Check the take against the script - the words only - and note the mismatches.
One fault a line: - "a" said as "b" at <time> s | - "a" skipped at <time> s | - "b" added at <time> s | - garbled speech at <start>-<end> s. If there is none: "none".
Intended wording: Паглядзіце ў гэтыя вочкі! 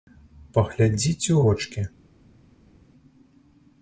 - "гэтыя" skipped at 1.4 s